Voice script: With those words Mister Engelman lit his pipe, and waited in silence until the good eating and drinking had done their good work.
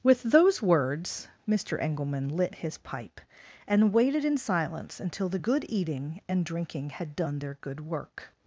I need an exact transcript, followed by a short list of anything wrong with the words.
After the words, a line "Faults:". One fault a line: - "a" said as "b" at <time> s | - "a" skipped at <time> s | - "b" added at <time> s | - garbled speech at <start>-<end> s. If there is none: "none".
With those words Mister Engelman lit his pipe, and waited in silence until the good eating and drinking had done their good work.
Faults:
none